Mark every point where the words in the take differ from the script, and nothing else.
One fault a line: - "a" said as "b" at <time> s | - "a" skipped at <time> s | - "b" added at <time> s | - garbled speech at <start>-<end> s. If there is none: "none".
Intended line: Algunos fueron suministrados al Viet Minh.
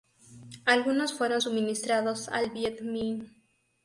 none